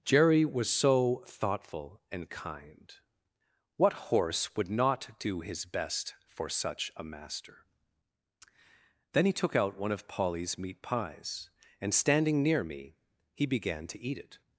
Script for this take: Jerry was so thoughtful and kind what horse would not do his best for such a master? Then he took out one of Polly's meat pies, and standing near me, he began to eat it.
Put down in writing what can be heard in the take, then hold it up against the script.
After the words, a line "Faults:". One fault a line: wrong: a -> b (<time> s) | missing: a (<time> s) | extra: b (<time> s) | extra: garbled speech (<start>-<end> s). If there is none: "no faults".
Jerry was so thoughtful and kind what horse would not do his best for such a master? Then he took out one of Polly's meat pies, and standing near me, he began to eat it.
Faults:
no faults